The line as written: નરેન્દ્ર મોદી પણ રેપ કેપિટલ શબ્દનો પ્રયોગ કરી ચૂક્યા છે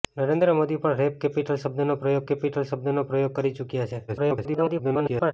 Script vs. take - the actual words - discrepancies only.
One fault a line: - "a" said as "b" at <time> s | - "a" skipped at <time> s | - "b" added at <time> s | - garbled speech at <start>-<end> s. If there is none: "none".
- "કેપિટલ શબ્દનો પ્રયોગ" added at 2.3 s
- garbled speech at 4.1-5.3 s